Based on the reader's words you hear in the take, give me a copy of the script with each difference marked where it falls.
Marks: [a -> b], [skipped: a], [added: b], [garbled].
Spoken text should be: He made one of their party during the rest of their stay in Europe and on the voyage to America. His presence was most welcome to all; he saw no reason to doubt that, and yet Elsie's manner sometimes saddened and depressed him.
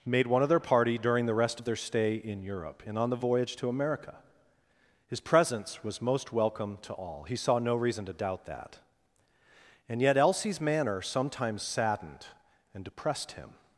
[skipped: He] made one of their party during the rest of their stay in Europe and on the voyage to America. His presence was most welcome to all; he saw no reason to doubt that, and yet Elsie's manner sometimes saddened and depressed him.